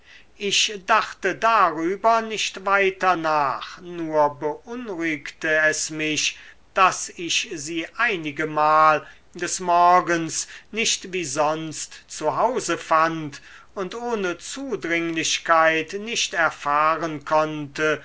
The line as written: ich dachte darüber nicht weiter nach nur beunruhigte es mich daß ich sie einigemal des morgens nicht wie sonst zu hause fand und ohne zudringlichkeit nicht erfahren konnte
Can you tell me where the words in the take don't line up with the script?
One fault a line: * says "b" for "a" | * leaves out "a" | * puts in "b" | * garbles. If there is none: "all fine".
all fine